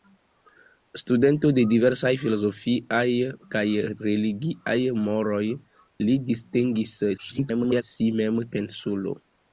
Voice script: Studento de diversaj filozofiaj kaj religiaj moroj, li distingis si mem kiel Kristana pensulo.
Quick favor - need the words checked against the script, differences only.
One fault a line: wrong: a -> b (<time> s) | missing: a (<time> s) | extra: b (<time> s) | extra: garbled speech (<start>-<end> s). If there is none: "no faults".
extra: garbled speech (7.2-7.8 s)
missing: kiel Kristana (8.4 s)